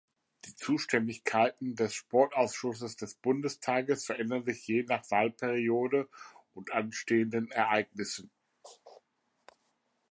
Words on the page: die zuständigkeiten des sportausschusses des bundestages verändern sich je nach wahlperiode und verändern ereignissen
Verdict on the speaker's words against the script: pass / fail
fail